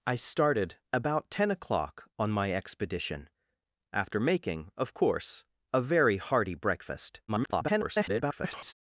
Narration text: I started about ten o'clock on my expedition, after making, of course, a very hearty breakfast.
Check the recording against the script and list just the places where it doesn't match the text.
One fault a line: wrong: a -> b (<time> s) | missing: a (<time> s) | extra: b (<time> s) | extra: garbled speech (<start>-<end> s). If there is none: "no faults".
extra: garbled speech (7.3-8.7 s)